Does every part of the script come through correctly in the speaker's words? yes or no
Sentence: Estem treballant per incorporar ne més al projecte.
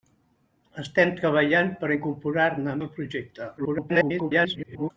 no